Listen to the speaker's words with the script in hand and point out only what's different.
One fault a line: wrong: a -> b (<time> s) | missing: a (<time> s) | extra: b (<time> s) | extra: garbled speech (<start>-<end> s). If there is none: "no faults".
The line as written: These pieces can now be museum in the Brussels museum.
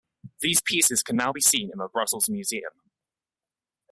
wrong: museum -> seen (1.4 s)